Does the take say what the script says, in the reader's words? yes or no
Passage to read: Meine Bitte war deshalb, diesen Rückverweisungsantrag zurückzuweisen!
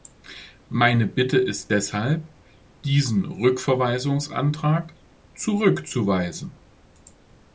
no